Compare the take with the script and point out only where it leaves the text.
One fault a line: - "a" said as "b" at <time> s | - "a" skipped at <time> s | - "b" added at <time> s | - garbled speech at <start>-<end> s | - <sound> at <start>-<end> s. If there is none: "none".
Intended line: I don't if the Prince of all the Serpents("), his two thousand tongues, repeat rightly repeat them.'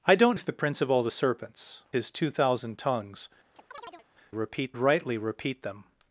- chirp at 3.5-4.1 s